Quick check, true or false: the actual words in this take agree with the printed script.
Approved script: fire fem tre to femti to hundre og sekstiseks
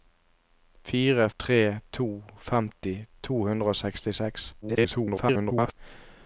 false